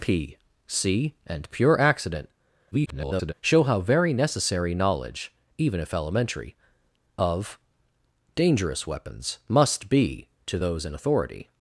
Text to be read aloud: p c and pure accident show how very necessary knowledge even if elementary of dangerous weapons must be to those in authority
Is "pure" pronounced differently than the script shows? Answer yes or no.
no